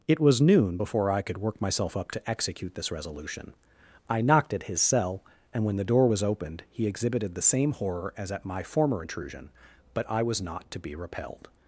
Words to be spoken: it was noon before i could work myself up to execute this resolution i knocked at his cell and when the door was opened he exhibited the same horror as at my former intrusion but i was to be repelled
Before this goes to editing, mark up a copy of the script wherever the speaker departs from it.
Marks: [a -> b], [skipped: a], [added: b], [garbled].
it was noon before i could work myself up to execute this resolution i knocked at his cell and when the door was opened he exhibited the same horror as at my former intrusion but i was [added: not] to be repelled